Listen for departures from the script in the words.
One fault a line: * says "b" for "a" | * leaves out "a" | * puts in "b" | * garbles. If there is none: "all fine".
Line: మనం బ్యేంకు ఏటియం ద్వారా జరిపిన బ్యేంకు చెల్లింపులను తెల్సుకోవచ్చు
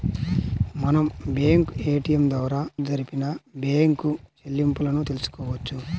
all fine